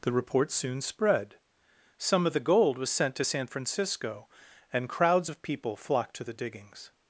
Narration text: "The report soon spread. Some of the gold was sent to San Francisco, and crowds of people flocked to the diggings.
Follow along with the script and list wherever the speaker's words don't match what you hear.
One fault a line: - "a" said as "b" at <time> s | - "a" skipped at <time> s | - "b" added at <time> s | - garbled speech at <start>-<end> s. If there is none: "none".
none